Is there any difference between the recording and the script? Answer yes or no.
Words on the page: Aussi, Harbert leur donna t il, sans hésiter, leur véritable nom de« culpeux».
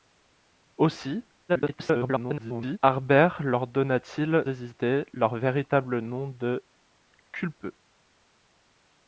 yes